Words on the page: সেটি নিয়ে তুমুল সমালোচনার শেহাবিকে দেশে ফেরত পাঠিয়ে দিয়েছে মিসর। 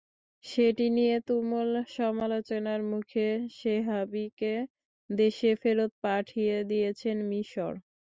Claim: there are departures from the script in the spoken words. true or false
true